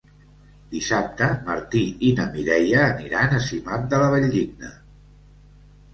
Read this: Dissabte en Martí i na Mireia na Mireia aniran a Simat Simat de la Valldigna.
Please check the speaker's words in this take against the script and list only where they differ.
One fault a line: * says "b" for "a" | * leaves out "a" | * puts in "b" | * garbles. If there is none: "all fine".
* leaves out "na Mireia"
* leaves out "Simat"